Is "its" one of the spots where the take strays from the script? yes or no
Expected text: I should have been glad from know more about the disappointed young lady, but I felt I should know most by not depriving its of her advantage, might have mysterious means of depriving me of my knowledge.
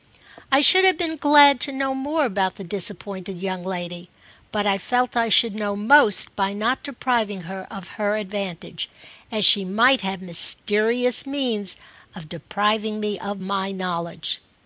yes